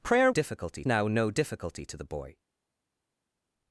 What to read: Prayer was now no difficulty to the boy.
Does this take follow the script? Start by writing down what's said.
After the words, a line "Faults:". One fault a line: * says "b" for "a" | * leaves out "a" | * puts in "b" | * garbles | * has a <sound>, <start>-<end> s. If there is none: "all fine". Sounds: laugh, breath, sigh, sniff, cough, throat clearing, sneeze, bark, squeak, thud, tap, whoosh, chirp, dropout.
Prayer difficulty now no difficulty to the boy.
Faults:
* says "difficulty" for "was"